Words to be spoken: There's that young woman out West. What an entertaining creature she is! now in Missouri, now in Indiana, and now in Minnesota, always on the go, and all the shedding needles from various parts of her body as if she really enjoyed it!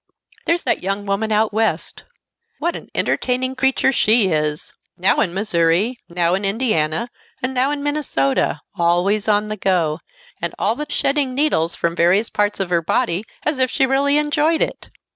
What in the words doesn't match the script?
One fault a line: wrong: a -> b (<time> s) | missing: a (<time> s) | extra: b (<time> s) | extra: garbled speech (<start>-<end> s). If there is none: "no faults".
no faults